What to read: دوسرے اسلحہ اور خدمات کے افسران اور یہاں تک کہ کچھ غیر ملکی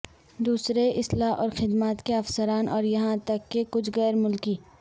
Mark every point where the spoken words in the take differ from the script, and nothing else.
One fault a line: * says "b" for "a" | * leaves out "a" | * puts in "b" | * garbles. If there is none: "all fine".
all fine